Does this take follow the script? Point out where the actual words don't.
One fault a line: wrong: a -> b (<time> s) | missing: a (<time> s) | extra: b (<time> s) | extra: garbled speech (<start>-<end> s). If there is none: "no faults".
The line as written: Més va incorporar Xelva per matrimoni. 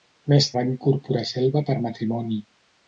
no faults